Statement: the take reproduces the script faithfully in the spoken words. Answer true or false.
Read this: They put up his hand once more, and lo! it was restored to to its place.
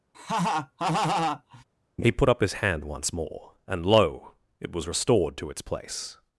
false